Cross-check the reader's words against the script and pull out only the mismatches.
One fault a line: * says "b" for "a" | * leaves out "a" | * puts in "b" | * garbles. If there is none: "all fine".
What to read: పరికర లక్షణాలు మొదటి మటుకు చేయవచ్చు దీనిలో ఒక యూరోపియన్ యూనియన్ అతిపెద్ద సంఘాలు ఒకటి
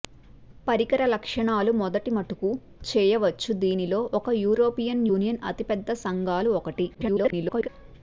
* garbles